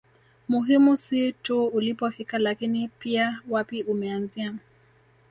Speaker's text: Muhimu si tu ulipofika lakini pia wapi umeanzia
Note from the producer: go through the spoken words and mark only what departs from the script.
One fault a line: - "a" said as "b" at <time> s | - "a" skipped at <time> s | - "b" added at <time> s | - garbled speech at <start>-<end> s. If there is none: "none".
none